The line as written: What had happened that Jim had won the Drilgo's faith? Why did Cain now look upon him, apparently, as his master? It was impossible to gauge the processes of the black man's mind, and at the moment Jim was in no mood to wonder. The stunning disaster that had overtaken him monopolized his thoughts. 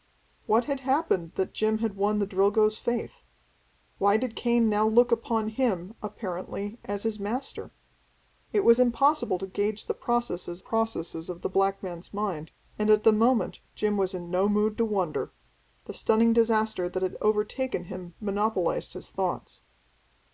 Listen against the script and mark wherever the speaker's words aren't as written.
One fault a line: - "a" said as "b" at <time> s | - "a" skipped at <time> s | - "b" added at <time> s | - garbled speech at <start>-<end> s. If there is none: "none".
- "processes" added at 10.6 s